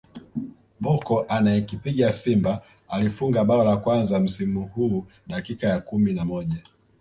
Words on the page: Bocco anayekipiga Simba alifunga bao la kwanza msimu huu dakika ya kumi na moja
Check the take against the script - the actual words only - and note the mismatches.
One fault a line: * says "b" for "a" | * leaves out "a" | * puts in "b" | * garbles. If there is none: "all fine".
all fine